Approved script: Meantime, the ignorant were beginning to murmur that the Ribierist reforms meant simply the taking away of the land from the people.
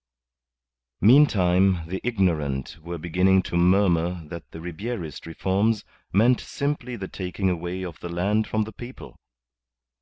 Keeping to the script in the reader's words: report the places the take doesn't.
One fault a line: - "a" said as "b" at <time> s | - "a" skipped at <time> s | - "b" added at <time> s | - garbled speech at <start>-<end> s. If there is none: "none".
none